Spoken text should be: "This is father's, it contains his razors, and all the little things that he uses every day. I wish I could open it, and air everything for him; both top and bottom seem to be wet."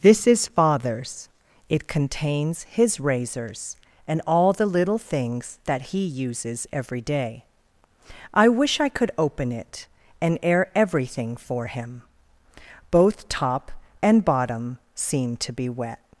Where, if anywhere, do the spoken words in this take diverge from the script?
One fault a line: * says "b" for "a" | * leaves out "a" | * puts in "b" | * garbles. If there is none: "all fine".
all fine